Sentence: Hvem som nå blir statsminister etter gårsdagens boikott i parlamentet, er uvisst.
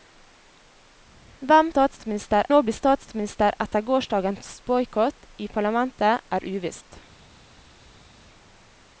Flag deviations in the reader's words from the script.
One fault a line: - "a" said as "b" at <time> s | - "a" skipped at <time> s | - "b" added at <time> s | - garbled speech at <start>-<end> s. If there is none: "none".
- "som" said as "statsminister" at 1.7 s